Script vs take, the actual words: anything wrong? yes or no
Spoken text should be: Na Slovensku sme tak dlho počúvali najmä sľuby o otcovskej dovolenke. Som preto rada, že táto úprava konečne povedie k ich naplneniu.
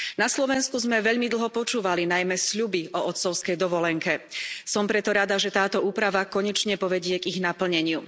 yes